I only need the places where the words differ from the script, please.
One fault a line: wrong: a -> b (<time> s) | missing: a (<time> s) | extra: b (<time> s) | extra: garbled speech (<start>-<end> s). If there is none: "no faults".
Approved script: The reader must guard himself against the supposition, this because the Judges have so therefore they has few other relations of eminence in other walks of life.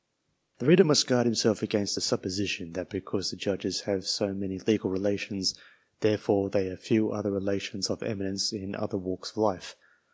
wrong: this -> that (2.7 s)
extra: many legal relations (4.3 s)
wrong: has -> have (6.7 s)